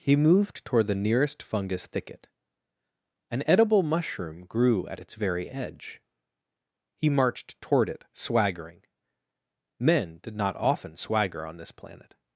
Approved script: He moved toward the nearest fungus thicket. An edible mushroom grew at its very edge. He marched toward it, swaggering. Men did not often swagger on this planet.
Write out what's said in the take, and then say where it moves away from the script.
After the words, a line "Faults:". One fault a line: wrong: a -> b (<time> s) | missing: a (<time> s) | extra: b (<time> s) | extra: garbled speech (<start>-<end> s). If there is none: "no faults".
He moved toward the nearest fungus thicket. An edible mushroom grew at its very edge. He marched toward it, swaggering. Men did not often swagger on this planet.
Faults:
no faults